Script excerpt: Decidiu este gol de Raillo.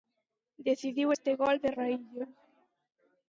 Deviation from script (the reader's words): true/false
false